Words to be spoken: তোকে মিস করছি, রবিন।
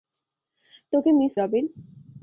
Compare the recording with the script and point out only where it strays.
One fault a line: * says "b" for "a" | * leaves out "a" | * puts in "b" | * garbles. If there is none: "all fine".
* leaves out "করছি"